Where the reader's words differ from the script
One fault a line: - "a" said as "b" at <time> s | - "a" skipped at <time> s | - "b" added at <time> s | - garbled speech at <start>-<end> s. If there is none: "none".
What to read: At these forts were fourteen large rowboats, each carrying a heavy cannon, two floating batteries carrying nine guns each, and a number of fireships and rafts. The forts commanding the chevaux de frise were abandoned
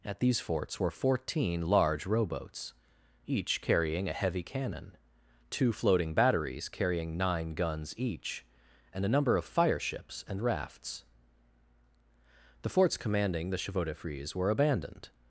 none